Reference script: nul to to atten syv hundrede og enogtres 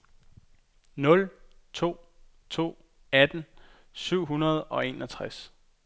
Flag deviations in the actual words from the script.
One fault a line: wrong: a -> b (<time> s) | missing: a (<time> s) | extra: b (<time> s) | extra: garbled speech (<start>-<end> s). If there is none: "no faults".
no faults